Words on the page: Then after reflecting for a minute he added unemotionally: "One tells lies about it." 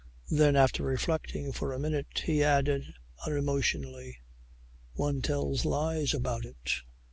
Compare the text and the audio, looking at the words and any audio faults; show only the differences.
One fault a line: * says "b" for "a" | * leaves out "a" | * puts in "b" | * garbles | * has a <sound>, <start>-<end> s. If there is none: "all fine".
all fine